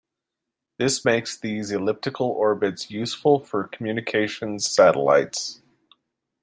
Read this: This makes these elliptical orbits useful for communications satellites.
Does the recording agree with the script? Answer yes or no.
yes